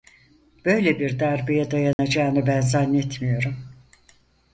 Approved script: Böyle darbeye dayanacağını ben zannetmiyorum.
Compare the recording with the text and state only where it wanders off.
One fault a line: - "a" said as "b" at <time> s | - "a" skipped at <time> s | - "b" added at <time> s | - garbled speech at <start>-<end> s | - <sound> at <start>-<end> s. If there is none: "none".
- "bir" added at 1.0 s
- dropout at 1.9-2.0 s